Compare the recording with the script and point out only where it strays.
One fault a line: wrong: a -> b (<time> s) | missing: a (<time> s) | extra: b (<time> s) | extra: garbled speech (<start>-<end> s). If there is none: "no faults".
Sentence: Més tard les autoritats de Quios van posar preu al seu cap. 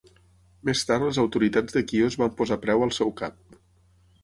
no faults